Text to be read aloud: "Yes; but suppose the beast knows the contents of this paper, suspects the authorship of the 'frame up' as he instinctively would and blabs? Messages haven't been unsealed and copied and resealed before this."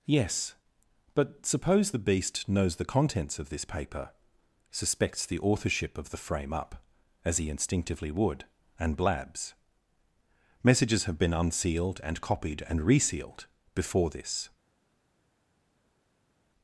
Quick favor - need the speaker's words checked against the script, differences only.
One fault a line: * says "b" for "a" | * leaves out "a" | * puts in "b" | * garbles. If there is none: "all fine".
* says "have" for "haven't"